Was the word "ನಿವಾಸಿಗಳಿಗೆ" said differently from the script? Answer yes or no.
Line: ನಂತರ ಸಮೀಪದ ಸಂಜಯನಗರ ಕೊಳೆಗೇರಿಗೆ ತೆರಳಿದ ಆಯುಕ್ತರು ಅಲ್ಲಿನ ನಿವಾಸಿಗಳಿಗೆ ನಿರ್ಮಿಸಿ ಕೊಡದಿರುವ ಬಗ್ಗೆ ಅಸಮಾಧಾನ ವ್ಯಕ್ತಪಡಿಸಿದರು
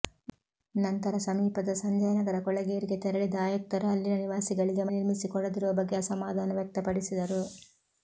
no